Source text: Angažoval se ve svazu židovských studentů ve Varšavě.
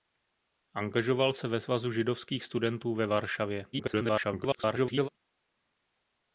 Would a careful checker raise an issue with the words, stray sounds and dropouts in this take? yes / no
yes